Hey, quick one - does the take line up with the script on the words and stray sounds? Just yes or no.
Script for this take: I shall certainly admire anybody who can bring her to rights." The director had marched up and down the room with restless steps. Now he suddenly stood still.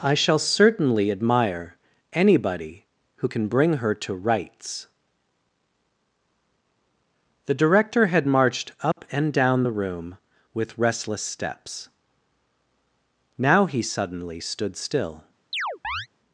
no